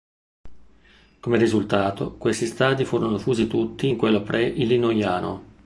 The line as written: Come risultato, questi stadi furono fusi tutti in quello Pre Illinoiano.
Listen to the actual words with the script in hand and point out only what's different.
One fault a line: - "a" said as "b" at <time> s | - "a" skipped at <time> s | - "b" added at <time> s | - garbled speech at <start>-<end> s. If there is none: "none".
none